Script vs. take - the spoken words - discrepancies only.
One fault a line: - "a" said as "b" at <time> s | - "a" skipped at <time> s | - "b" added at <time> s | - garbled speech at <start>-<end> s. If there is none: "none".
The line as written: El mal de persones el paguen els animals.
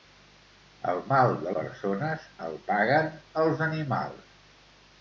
none